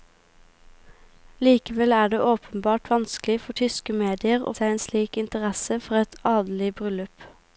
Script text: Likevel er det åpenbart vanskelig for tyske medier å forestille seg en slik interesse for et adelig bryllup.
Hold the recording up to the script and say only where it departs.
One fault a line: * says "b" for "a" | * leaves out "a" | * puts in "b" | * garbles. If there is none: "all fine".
* leaves out "forestille"